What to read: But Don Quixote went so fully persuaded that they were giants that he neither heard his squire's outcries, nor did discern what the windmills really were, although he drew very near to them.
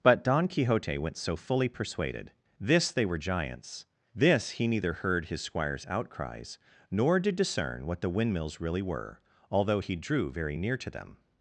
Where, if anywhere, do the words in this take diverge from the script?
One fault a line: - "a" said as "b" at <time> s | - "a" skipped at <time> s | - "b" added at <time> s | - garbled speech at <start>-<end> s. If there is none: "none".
- "that" said as "this" at 2.6 s
- "that" said as "this" at 4.1 s